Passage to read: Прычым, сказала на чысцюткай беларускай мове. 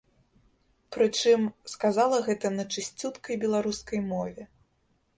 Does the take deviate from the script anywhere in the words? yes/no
yes